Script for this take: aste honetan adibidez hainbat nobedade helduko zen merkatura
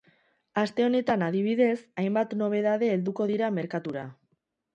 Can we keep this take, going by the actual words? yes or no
no